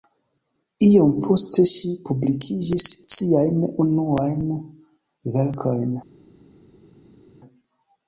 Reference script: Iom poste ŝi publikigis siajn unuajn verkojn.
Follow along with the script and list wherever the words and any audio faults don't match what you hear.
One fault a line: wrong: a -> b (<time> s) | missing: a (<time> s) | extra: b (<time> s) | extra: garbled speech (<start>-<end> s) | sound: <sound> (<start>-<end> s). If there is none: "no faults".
no faults